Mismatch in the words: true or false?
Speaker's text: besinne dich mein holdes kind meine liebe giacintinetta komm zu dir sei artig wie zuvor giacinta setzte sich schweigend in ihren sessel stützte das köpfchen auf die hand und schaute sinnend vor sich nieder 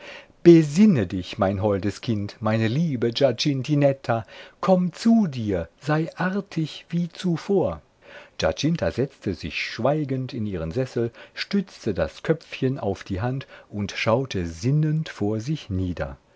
false